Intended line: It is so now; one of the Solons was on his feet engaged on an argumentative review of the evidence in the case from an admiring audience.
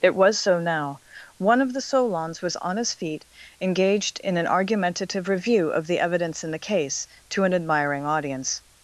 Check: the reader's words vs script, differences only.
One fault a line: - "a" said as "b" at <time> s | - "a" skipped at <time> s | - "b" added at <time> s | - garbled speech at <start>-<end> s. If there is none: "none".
- "is" said as "was" at 0.1 s
- "on" said as "in" at 4.2 s
- "from" said as "to" at 7.3 s